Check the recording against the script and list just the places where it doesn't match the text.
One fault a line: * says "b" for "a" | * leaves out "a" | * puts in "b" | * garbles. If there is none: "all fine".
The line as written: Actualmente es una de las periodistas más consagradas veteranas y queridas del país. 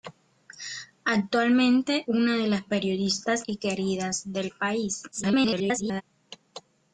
* leaves out "es"
* leaves out "más consagradas veteranas"
* garbles